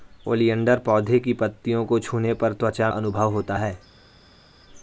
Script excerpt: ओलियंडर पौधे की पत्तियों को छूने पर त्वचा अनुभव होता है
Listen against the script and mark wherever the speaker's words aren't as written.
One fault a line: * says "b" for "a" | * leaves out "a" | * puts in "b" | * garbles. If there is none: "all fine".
all fine